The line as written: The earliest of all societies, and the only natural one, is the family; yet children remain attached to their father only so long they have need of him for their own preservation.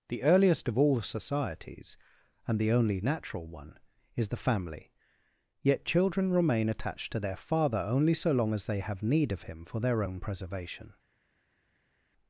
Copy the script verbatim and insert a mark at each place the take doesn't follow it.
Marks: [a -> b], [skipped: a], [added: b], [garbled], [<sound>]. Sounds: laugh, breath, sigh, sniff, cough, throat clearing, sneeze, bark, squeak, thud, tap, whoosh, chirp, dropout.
The earliest of all societies, and the only natural one, is the family; yet children remain attached to their father only so long [added: as] they have need of him for their own preservation.